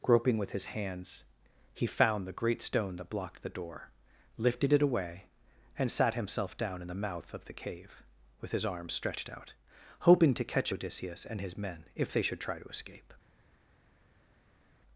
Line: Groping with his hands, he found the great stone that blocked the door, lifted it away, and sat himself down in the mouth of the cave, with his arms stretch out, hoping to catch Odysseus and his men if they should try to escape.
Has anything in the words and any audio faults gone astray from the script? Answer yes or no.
yes